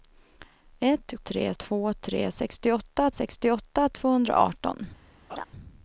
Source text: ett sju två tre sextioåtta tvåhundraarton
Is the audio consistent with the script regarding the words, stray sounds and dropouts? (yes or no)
no